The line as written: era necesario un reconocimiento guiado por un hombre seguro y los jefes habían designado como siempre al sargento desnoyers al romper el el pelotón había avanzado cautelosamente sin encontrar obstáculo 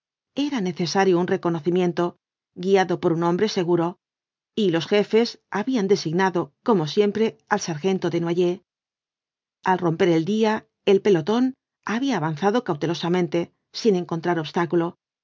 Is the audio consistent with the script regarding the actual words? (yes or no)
no